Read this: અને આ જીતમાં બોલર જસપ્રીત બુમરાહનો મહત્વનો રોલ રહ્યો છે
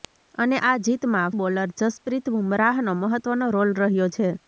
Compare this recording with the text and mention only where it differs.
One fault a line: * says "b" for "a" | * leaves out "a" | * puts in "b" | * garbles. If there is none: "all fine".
all fine